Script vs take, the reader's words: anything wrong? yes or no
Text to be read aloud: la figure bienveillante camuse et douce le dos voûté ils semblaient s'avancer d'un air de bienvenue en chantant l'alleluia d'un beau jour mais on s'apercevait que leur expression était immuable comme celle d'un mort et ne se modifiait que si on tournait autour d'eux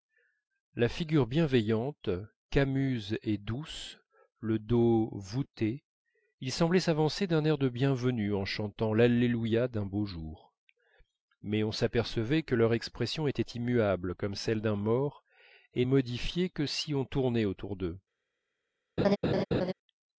yes